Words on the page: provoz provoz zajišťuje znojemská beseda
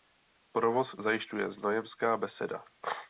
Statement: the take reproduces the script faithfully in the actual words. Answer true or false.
false